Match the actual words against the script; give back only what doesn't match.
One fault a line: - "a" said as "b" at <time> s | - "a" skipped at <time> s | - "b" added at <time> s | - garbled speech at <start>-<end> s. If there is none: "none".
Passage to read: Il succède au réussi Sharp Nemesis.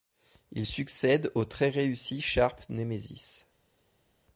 - "très" added at 1.4 s